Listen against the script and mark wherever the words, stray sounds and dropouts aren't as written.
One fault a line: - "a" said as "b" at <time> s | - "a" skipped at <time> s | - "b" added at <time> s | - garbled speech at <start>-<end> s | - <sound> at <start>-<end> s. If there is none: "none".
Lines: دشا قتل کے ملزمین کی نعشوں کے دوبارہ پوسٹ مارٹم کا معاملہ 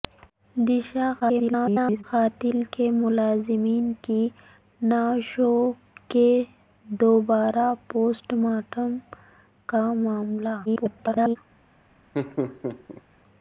- garbled speech at 1.2-2.0 s
- garbled speech at 10.7-11.4 s
- laugh at 12.1-13.0 s